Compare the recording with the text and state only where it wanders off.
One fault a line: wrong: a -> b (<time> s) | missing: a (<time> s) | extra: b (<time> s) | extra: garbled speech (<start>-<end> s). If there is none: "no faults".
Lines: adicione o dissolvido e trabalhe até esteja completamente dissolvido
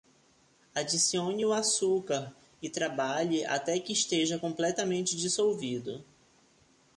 wrong: dissolvido -> açúcar (1.5 s)
extra: que (3.8 s)